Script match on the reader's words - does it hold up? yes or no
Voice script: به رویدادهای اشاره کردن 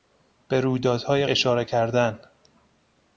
yes